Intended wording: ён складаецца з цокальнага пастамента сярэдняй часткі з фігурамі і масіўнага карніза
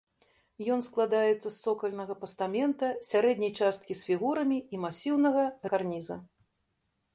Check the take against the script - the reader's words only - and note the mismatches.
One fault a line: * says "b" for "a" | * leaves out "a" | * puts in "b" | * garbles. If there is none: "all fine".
all fine